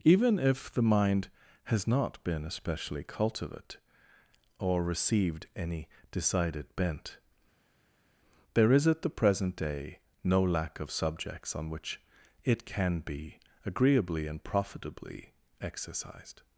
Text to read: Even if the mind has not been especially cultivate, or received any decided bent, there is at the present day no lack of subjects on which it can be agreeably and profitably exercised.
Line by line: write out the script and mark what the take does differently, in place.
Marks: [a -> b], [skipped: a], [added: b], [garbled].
Even if the mind has not been especially cultivate, or received any decided bent, there is at the present day no lack of subjects on which it can be agreeably and profitably exercised.